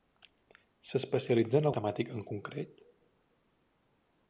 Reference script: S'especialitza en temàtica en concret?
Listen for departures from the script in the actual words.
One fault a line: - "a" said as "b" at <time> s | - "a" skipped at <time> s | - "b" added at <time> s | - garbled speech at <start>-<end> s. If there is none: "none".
none